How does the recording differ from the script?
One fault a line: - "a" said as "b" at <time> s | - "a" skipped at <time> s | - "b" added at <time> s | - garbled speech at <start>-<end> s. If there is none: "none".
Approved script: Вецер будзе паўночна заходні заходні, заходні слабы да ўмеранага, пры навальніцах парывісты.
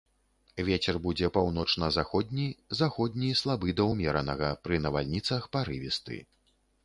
- "заходні" skipped at 3.3 s